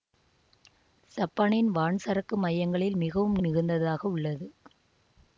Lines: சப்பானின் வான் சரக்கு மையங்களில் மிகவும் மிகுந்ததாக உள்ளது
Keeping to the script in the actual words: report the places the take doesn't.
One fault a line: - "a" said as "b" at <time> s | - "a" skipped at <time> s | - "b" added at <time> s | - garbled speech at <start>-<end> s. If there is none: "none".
none